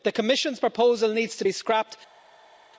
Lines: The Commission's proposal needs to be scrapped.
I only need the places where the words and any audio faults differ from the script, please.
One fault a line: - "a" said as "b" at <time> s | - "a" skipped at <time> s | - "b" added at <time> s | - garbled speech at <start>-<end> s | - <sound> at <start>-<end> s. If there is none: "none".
none